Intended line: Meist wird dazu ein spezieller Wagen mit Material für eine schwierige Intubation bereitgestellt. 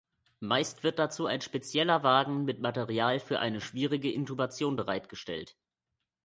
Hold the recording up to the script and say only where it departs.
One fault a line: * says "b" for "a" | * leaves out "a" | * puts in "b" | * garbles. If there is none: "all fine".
all fine